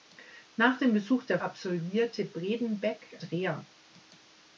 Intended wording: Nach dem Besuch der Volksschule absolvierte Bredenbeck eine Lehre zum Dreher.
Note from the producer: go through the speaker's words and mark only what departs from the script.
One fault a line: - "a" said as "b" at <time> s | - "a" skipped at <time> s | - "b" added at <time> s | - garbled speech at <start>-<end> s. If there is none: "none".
- "Volksschule" skipped at 1.4 s
- "eine Lehre zum" skipped at 3.2 s